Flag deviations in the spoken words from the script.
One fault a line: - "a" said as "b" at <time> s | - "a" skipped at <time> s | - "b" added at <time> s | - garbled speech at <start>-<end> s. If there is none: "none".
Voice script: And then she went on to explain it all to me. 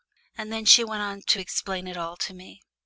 none